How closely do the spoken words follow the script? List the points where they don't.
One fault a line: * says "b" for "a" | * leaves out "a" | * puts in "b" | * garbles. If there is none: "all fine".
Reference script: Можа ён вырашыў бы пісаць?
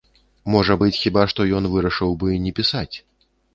* puts in "быць хіба што"
* puts in "не"